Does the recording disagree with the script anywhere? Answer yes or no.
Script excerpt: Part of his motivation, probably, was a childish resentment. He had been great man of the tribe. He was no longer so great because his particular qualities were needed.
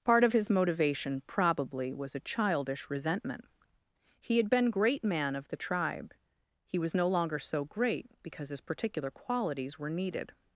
no